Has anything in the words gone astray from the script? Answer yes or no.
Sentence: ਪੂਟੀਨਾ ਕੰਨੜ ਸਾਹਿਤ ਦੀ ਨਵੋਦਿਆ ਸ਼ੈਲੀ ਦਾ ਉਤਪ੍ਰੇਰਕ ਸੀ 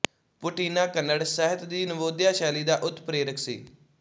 no